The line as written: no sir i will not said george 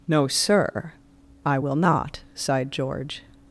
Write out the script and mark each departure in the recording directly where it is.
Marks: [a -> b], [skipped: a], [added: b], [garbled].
no sir i will not [said -> sighed] george